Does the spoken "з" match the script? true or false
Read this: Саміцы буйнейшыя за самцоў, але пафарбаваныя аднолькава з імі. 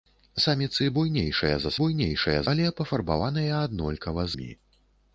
false